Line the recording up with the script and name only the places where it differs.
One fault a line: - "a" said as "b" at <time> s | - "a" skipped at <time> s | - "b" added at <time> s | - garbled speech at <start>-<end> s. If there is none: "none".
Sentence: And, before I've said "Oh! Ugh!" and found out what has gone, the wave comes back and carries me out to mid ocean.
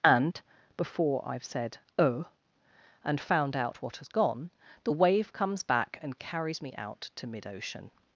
- "Ugh" skipped at 2.2 s